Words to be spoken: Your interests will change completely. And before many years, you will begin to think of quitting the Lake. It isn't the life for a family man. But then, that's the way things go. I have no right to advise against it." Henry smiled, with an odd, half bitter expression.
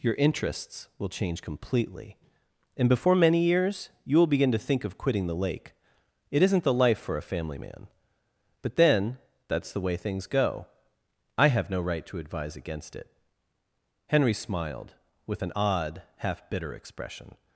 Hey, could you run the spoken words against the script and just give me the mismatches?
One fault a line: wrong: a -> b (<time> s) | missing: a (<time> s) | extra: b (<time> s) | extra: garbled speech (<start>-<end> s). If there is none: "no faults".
no faults